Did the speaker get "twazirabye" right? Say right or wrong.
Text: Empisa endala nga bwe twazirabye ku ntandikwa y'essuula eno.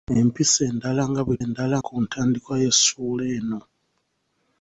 wrong